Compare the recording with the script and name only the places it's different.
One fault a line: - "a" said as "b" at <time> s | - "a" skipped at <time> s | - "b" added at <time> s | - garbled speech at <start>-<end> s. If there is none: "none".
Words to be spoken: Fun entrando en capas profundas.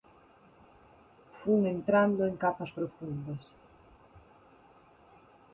none